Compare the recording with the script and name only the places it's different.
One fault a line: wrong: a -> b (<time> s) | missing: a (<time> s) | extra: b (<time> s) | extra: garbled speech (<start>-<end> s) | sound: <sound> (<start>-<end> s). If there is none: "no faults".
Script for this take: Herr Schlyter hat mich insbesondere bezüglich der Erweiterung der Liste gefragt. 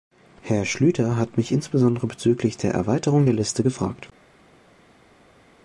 no faults